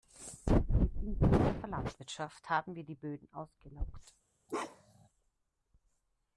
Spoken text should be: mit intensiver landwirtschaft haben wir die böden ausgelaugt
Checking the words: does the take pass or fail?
pass